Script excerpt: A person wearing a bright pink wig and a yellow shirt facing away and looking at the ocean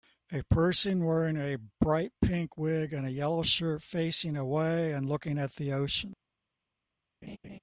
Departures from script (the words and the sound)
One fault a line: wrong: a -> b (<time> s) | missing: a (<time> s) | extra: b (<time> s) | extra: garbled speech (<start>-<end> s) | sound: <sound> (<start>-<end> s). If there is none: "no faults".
sound: laugh (7.2-7.6 s)